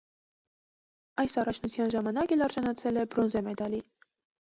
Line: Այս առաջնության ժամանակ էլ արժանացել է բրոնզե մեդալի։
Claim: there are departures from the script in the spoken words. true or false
false